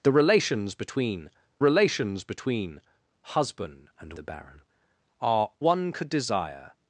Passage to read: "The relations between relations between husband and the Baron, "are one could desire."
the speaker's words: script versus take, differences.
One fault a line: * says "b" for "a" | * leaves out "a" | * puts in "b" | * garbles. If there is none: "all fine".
all fine